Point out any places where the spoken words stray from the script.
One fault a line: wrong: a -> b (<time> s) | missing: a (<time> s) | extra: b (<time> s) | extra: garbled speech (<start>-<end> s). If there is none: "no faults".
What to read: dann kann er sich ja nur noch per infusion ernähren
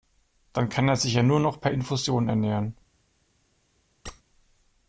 no faults